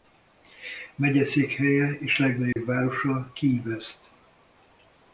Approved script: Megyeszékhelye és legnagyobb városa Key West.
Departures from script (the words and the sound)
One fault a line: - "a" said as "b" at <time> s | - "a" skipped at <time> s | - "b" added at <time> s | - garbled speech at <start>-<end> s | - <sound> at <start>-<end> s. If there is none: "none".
- dropout at 2.5-2.6 s